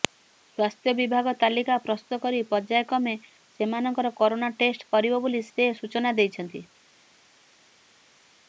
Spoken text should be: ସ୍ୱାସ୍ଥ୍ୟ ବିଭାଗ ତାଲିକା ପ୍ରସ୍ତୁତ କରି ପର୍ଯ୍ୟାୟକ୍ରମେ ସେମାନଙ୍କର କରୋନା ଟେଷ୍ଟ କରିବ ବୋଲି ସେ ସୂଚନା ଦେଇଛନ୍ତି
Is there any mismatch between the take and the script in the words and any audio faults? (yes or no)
no